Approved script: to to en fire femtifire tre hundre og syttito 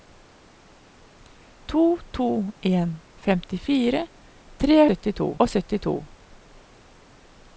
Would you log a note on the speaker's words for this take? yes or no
yes